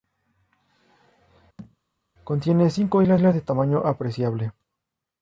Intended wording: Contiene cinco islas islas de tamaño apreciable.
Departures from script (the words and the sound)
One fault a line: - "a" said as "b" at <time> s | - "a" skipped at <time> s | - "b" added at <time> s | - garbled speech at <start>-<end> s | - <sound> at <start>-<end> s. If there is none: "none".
- thud at 1.6-1.8 s